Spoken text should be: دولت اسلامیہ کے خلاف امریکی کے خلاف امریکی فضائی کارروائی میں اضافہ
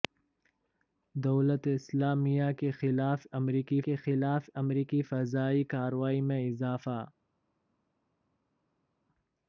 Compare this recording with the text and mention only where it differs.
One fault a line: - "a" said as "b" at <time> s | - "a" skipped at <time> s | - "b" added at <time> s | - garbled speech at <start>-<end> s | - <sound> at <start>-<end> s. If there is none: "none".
none